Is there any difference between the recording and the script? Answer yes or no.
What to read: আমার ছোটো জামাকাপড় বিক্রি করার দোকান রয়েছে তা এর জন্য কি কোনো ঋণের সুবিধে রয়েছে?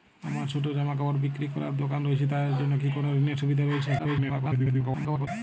yes